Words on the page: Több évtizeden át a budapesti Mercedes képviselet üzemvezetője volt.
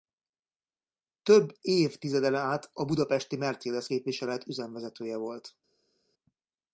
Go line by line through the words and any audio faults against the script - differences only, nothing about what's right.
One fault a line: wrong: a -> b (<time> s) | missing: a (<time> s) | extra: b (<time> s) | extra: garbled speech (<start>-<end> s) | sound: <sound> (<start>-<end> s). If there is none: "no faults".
no faults